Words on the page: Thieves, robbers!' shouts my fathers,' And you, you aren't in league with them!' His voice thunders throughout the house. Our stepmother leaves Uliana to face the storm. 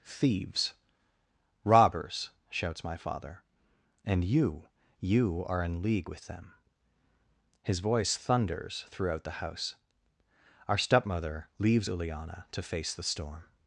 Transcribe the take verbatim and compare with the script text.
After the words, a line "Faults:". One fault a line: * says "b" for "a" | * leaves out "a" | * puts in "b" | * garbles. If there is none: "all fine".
Thieves, robbers!' shouts my father,' And you, you are in league with them!' His voice thunders throughout the house. Our stepmother leaves Uliana to face the storm.
Faults:
* says "father" for "fathers"
* says "are" for "aren't"